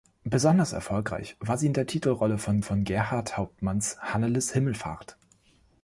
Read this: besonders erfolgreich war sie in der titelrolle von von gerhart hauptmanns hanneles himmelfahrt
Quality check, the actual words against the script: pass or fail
pass